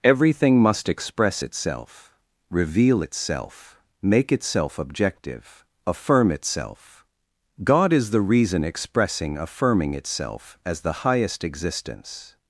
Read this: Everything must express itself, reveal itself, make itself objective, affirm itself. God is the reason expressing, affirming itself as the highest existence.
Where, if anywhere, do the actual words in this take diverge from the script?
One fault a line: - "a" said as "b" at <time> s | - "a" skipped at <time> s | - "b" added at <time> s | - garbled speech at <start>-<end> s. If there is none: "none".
none